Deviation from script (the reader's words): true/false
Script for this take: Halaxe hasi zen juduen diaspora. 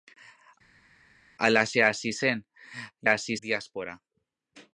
true